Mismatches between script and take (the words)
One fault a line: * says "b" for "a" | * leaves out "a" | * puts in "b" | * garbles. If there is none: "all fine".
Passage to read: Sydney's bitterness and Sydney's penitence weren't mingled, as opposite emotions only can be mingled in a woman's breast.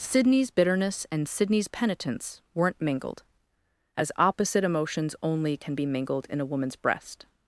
all fine